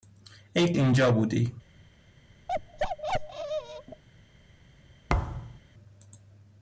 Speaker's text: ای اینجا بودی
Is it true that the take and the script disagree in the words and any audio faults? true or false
true